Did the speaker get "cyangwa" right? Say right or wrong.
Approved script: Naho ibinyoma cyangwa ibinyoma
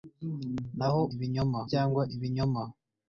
right